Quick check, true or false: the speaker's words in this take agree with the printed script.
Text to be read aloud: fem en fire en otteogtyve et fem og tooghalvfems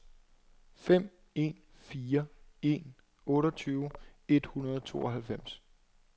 false